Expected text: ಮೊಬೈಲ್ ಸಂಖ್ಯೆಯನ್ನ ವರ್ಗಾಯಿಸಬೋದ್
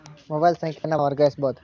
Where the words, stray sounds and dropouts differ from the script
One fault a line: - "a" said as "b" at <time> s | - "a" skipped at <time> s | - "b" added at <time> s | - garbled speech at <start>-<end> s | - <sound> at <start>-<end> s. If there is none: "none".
- dropout at 0.8-0.8 s